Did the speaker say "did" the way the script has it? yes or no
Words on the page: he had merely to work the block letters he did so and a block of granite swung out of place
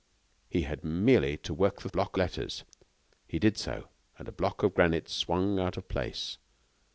yes